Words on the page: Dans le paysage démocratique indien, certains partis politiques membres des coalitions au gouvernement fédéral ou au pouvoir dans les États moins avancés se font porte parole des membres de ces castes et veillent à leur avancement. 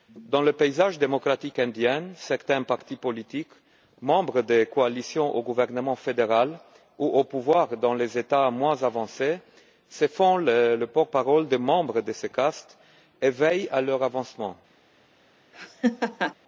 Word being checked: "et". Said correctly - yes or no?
yes